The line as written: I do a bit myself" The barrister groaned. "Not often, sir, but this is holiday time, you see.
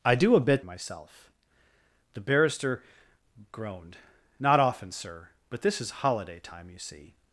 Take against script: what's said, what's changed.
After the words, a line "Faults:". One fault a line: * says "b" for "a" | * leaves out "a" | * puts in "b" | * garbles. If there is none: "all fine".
I do a bit myself" The barrister groaned. "Not often, sir, but this is holiday time, you see.
Faults:
all fine